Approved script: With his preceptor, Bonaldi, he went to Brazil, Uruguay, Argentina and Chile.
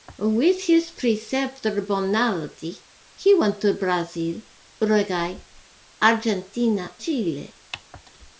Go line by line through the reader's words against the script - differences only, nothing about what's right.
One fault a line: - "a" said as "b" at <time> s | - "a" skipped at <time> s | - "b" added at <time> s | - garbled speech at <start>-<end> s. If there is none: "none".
- "and" skipped at 6.9 s